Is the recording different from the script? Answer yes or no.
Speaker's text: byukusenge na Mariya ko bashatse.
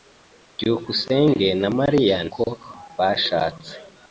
no